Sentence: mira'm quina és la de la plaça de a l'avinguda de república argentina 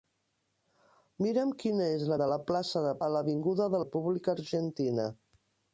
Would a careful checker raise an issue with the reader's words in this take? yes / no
no